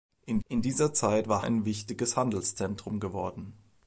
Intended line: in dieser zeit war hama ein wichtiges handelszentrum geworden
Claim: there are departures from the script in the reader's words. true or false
true